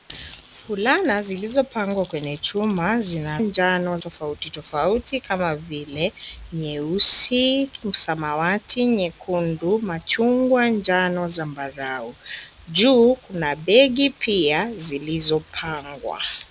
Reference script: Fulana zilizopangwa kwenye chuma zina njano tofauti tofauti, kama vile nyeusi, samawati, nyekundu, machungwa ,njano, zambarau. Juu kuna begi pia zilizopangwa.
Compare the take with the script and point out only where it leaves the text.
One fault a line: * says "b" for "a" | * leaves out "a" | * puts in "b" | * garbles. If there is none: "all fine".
all fine